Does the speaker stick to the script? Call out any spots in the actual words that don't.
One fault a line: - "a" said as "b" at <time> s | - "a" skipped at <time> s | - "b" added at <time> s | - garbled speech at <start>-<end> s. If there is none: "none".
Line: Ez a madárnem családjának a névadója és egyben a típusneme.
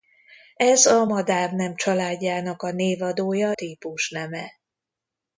- "és egyben a" skipped at 3.5 s